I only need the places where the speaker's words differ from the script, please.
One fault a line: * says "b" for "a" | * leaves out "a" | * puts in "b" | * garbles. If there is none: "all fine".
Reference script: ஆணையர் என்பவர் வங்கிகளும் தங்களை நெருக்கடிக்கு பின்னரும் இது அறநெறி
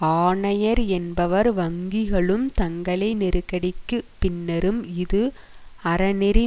all fine